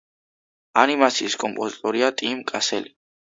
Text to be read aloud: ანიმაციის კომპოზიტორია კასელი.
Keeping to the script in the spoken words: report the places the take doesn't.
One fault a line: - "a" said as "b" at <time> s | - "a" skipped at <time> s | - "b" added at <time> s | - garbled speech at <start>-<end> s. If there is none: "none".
- "ტიმ" added at 2.2 s